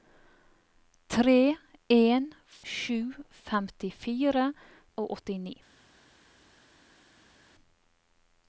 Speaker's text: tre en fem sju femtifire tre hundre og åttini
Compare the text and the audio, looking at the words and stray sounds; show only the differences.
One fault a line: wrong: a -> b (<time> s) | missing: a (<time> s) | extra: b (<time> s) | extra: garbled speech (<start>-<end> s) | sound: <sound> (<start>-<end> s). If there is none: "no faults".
missing: fem (2.2 s)
missing: tre hundre (4.5 s)